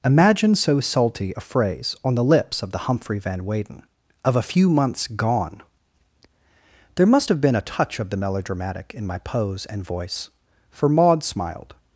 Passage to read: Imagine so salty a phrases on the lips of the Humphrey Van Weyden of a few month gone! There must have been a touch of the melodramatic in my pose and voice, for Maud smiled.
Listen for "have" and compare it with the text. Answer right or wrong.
right